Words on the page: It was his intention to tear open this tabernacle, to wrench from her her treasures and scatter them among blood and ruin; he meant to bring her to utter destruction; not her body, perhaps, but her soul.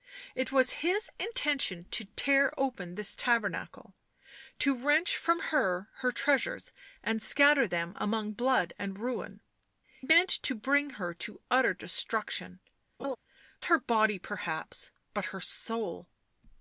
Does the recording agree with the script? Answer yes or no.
no